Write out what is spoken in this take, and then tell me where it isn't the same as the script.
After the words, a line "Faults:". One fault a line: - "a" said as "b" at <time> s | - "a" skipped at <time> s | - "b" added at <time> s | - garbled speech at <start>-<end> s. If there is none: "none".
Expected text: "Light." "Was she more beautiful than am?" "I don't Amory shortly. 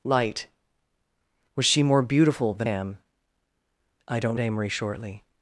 "Light." "Was she more beautiful than am?" "I don't Amory shortly.
Faults:
none